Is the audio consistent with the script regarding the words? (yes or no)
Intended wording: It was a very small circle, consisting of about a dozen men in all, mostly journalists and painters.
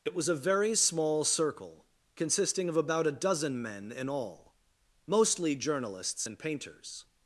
yes